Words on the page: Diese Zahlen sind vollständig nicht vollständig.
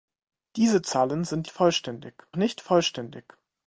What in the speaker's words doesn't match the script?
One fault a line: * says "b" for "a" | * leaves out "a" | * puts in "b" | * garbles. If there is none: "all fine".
all fine